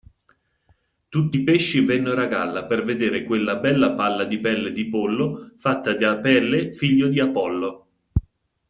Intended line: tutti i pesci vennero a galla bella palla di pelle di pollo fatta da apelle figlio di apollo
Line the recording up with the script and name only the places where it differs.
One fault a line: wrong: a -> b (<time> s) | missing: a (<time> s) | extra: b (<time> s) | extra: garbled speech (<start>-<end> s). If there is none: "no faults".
extra: per vedere quella (2.7 s)